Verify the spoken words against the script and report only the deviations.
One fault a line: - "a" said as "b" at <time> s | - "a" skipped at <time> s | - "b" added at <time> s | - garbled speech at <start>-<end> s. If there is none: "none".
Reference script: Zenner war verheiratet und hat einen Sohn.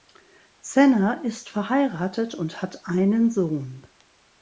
- "war" said as "ist" at 1.2 s